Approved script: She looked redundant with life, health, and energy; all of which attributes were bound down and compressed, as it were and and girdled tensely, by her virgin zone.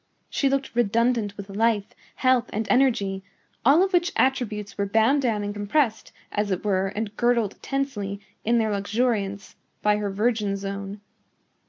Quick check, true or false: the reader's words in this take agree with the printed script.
false